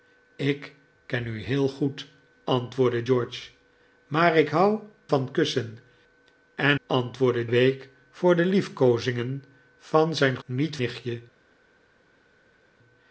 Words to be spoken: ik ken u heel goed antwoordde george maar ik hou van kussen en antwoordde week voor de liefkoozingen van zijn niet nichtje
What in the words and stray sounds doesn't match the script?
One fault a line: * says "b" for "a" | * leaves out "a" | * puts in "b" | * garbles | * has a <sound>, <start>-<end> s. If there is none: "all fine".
all fine